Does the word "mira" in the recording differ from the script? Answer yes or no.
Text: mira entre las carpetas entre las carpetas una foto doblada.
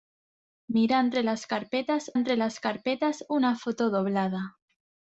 no